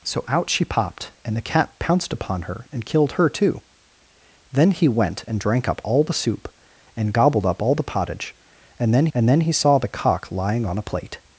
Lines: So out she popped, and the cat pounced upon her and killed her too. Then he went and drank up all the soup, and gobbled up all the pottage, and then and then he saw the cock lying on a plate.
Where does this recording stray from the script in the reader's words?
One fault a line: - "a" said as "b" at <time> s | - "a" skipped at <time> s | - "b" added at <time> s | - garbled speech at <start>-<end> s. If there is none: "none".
none